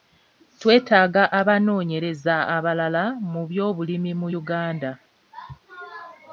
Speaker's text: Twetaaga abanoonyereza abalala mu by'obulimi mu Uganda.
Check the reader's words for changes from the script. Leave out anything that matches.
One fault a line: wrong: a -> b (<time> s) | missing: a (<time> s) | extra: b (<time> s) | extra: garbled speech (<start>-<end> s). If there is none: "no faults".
no faults